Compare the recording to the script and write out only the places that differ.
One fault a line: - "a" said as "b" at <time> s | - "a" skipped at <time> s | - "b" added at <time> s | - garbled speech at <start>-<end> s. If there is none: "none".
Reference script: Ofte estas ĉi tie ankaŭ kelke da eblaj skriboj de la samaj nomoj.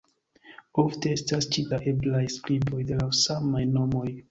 - "tie ankaŭ kelke" skipped at 1.6 s